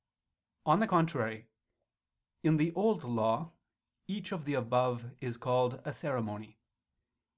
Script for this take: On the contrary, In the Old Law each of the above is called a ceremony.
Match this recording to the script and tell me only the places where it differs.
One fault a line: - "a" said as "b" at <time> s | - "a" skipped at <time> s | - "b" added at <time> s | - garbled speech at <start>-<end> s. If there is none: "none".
none